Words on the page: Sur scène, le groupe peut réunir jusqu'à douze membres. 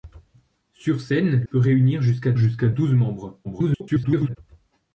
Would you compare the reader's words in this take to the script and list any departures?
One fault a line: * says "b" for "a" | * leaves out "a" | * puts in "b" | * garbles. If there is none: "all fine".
* leaves out "le groupe"
* puts in "jusqu'à"
* garbles